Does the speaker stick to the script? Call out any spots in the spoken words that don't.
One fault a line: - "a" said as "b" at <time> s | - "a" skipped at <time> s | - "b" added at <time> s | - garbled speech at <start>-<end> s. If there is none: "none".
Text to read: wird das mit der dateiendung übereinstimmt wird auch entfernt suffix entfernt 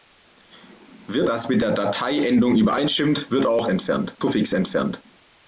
none